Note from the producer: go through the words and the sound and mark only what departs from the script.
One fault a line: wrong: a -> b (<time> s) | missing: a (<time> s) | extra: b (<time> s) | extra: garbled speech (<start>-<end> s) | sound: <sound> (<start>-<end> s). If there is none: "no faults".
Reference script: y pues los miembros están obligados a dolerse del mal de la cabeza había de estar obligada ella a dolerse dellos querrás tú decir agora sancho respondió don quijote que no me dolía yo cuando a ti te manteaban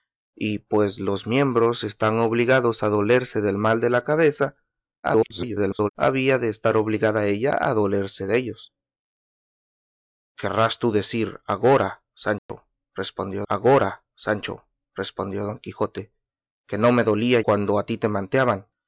extra: garbled speech (5.0-5.9 s)
sound: dropout (12.4-12.5 s)
extra: agora sancho respondió (13.5 s)
missing: yo (17.4 s)